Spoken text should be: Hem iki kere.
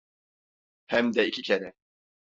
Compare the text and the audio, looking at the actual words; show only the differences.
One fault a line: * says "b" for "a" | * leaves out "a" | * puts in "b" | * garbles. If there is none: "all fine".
* puts in "de"